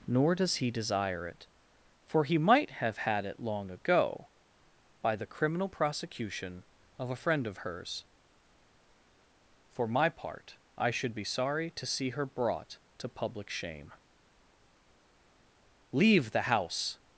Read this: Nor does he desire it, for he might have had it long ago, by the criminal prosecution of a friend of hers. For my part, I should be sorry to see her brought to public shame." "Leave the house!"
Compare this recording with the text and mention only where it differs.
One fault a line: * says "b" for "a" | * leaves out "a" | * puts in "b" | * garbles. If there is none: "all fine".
all fine